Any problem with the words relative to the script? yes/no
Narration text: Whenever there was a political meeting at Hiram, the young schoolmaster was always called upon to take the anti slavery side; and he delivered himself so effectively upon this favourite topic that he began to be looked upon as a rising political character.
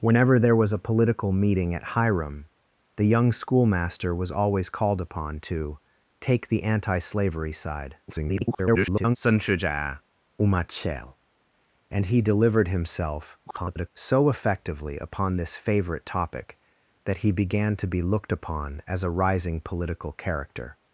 yes